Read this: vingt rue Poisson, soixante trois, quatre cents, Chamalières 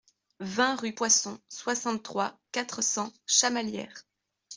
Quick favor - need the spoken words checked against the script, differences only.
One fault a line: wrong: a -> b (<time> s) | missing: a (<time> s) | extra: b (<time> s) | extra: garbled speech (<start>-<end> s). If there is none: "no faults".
no faults